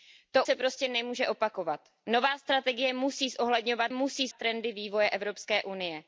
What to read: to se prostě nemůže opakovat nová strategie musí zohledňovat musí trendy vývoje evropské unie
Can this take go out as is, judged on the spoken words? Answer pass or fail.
pass